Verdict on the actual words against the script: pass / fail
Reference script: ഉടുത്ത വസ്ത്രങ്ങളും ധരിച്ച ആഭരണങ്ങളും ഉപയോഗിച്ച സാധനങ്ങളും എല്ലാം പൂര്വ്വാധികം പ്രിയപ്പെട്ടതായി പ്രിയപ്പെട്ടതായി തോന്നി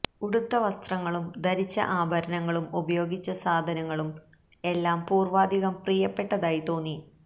fail